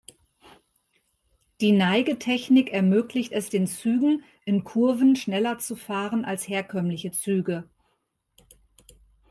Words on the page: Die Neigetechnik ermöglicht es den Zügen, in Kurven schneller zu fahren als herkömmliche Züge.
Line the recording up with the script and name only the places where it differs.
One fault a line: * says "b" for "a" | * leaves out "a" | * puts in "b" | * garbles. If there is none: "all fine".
all fine